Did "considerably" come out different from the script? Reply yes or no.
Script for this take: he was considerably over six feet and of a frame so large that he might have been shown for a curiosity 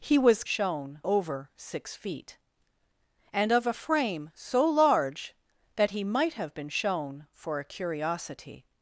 yes